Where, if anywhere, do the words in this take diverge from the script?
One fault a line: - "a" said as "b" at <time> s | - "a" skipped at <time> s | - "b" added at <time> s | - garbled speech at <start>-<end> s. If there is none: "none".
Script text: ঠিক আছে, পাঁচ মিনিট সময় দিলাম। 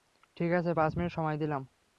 none